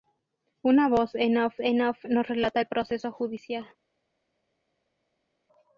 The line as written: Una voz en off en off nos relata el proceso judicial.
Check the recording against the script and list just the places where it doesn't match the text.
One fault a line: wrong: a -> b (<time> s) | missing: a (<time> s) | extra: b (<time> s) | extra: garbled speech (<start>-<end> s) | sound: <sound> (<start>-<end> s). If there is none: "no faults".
no faults